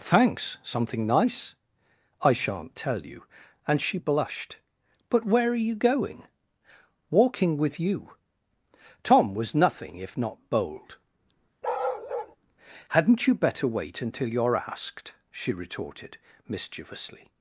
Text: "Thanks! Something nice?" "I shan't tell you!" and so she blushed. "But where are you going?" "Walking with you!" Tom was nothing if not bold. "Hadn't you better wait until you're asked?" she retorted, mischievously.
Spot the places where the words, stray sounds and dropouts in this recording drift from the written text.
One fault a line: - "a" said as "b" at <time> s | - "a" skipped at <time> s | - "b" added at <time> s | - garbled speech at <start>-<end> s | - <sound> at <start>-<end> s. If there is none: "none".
- "so" skipped at 3.8 s
- bark at 11.6-12.4 s